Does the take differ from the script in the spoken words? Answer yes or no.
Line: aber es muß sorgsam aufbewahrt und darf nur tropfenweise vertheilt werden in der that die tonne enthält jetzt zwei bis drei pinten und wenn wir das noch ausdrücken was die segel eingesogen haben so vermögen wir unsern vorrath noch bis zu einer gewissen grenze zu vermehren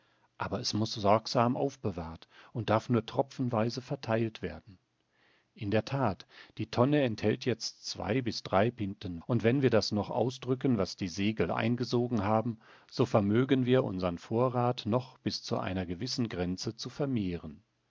no